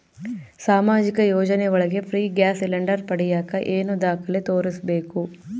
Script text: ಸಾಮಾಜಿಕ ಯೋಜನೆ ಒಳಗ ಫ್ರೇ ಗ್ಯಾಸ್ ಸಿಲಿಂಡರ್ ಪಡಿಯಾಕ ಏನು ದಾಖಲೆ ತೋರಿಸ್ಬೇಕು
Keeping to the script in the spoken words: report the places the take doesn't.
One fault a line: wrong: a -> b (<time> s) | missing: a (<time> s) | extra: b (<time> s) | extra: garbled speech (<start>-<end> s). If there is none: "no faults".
no faults